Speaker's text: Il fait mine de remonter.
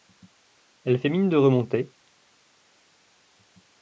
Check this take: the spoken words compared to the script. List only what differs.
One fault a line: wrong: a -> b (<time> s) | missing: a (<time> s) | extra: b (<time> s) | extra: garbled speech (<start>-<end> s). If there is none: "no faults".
wrong: Il -> Elle (0.8 s)